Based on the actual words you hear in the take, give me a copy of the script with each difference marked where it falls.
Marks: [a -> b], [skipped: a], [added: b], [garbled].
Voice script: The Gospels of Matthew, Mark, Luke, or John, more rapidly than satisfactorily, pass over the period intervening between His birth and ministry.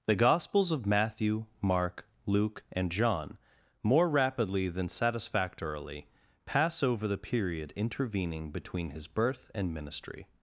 The Gospels of Matthew, Mark, Luke, [or -> and] John, more rapidly than satisfactorily, pass over the period intervening between His birth and ministry.